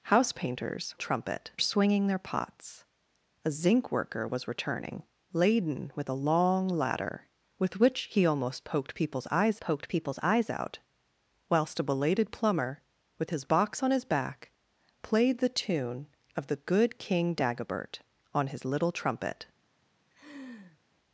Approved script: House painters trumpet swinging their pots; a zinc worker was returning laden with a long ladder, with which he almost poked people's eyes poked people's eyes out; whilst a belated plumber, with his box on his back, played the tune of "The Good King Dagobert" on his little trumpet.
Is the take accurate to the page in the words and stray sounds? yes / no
no